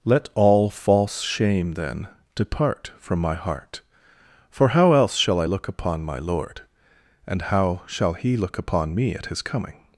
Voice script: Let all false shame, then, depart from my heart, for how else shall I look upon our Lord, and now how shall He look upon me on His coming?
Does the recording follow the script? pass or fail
fail